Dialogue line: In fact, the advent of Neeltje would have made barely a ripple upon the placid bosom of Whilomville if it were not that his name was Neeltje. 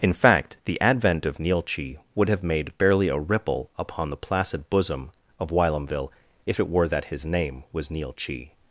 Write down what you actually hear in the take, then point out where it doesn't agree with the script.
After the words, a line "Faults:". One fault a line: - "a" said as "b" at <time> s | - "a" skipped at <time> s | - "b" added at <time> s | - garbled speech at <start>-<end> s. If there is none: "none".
In fact, the advent of Neeltje would have made barely a ripple upon the placid bosom of Whilomville if it were that his name was Neeltje.
Faults:
- "not" skipped at 6.9 s